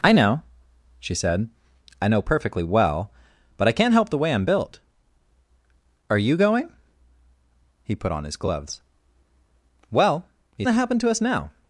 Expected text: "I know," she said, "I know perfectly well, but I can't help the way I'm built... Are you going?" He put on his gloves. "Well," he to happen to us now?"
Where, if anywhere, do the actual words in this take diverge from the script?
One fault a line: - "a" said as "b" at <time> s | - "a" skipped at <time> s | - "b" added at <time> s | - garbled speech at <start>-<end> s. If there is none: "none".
none